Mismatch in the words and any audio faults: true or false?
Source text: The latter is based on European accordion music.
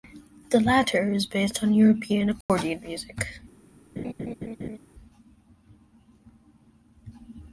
true